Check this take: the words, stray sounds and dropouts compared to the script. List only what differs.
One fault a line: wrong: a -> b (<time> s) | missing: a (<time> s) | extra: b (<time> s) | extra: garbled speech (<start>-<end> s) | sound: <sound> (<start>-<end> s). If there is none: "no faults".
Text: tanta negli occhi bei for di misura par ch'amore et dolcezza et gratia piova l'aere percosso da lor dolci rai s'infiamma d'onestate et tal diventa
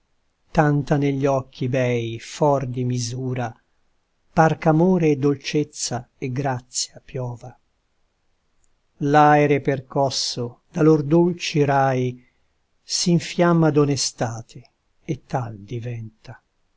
no faults